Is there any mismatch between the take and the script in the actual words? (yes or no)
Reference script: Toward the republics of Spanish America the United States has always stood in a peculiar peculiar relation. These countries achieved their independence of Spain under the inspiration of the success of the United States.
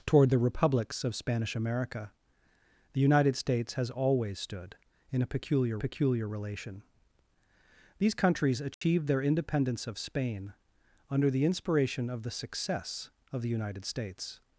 no